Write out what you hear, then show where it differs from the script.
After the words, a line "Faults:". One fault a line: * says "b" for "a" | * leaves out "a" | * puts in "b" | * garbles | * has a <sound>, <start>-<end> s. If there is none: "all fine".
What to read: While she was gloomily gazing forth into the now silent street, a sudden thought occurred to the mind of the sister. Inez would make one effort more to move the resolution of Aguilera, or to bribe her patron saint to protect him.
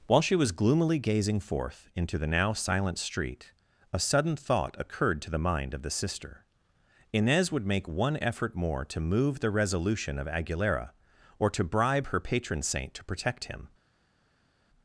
While she was gloomily gazing forth into the now silent street, a sudden thought occurred to the mind of the sister. Inez would make one effort more to move the resolution of Aguilera, or to bribe her patron saint to protect him.
Faults:
all fine